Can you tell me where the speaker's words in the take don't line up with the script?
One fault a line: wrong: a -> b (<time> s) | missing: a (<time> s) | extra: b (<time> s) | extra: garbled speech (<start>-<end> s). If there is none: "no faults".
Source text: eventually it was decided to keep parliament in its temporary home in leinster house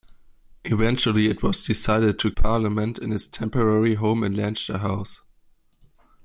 missing: keep (2.3 s)